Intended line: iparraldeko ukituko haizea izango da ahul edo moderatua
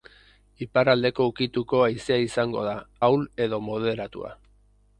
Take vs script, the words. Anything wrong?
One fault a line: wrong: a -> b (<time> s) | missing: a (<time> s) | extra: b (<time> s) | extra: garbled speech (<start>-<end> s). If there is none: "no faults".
no faults